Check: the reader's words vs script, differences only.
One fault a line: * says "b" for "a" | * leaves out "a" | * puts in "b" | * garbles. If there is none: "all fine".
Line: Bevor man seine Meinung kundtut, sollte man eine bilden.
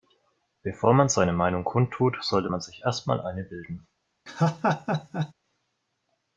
* puts in "sich erst mal"